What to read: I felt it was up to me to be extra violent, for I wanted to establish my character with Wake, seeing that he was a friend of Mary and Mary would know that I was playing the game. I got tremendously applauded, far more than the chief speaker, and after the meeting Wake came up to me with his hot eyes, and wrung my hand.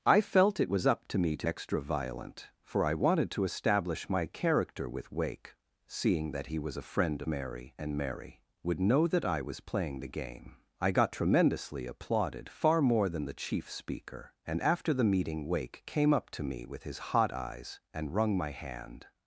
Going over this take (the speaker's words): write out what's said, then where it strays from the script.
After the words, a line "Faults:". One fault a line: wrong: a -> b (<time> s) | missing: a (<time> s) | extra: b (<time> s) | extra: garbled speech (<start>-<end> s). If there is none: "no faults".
I felt it was up to me to extra violent, for I wanted to establish my character with Wake, seeing that he was a friend Mary and Mary would know that I was playing the game. I got tremendously applauded, far more than the chief speaker, and after the meeting Wake came up to me with his hot eyes, and wrung my hand.
Faults:
missing: be (1.5 s)
missing: of (7.2 s)